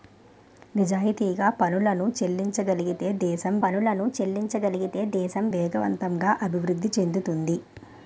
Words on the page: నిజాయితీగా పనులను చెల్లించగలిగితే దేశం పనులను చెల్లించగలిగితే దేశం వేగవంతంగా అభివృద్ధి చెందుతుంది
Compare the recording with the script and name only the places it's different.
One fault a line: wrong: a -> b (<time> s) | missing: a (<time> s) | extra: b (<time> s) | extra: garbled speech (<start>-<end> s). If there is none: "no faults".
no faults